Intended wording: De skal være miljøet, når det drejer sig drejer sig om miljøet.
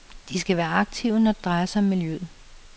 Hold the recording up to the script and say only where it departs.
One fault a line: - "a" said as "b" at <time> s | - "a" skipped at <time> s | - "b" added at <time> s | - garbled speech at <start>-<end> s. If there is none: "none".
- "miljøet" said as "aktive" at 0.7 s
- "drejer sig" skipped at 1.8 s